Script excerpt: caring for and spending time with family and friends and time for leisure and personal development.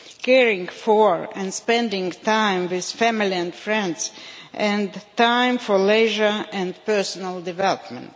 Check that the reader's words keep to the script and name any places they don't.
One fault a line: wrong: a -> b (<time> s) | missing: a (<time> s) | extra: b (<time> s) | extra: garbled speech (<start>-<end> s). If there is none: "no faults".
no faults